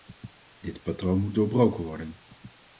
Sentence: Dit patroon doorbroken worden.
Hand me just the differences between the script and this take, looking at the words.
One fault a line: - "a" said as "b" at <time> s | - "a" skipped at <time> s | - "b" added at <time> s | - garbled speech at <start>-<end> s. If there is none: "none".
- "moet" added at 1.2 s